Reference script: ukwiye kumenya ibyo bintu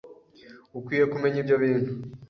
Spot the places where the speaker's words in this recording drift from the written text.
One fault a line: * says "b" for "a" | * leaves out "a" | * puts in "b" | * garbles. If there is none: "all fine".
all fine